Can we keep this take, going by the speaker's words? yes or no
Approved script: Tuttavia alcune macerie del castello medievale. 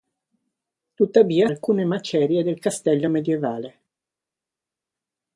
yes